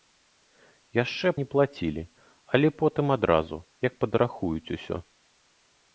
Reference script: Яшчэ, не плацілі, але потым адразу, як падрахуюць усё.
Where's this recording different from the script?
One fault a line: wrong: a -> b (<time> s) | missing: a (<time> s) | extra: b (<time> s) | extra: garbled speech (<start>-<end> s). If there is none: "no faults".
no faults